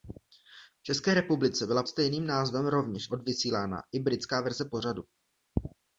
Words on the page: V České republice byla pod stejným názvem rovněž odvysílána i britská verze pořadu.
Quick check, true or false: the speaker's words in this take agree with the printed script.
false